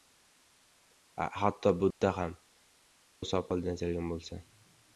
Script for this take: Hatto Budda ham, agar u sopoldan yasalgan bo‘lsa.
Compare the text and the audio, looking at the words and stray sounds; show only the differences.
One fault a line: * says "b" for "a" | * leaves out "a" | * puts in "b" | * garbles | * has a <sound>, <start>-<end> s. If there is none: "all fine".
* has a dropout, 1.9-2.0 s
* leaves out "agar"